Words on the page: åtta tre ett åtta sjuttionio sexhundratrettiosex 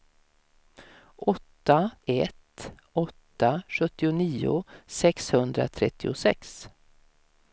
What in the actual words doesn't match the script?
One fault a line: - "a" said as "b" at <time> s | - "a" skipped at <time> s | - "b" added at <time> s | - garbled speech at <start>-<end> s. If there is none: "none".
- "tre" skipped at 1.9 s